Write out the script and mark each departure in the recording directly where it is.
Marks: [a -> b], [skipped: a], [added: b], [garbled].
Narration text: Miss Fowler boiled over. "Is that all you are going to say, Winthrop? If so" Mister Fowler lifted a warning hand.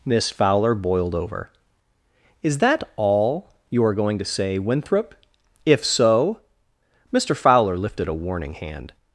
Miss Fowler boiled over. "Is that all you are going to say, Winthrop? If so" Mister Fowler lifted a warning hand.